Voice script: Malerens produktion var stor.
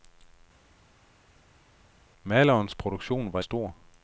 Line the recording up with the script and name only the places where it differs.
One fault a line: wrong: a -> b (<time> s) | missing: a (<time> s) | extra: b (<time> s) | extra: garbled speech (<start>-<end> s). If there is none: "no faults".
no faults